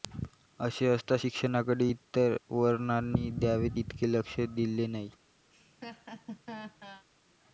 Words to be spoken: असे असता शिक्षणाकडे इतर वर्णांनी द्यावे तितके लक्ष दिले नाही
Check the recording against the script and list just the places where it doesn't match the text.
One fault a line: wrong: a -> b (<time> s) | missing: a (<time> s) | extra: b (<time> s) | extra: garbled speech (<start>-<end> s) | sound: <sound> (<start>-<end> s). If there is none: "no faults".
sound: laugh (5.5-7.1 s)